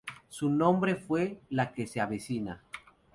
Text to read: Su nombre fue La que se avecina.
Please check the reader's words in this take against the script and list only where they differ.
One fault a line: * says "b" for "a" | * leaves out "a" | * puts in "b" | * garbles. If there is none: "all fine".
all fine